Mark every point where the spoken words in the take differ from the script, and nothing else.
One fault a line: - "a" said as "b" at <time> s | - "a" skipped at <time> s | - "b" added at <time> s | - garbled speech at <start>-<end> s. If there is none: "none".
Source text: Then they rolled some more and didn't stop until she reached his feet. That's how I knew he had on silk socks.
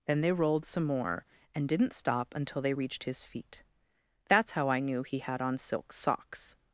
- "she" said as "they" at 2.6 s